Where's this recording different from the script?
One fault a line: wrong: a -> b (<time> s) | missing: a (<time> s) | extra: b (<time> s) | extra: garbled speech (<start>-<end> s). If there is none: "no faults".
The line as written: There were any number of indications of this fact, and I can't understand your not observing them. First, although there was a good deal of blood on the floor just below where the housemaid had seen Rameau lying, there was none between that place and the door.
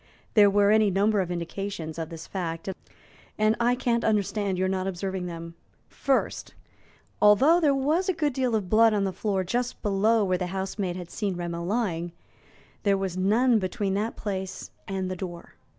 no faults